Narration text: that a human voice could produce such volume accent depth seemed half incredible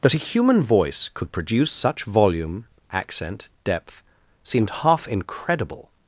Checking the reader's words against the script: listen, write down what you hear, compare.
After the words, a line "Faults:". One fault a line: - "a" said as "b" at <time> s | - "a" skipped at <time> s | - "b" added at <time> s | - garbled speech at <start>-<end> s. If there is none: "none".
that a human voice could produce such volume accent depth seemed half incredible
Faults:
none